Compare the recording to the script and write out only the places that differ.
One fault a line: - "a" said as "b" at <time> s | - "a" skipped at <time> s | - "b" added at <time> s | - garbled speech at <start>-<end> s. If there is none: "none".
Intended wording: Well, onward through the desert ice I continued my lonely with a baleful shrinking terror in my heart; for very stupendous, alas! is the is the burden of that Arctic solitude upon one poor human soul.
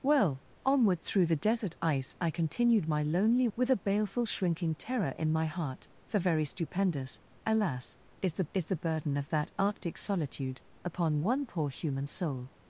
none